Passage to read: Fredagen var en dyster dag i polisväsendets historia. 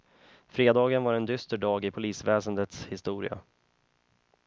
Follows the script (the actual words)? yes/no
yes